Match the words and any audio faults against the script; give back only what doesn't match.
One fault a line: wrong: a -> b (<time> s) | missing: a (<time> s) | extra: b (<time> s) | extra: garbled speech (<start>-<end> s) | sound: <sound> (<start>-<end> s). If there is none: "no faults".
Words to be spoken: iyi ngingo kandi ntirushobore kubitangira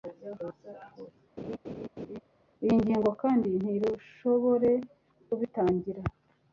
sound: laugh (1.4-2.2 s)